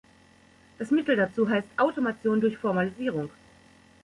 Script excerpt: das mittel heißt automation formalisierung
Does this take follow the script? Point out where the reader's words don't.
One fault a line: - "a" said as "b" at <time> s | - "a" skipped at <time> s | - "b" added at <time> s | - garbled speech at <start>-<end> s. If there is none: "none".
- "dazu" added at 1.1 s
- "durch" added at 2.4 s